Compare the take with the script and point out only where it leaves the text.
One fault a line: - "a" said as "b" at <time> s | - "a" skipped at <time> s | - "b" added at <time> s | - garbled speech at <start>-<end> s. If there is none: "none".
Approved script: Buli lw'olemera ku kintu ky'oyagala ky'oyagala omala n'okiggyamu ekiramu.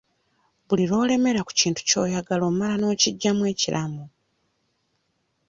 - "ky'oyagala" skipped at 2.4 s